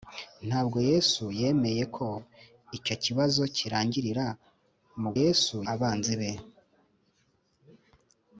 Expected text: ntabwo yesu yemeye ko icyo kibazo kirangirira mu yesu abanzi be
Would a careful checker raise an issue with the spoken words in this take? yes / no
no